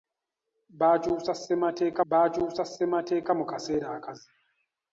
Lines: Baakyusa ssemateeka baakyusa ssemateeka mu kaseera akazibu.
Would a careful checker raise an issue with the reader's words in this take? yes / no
no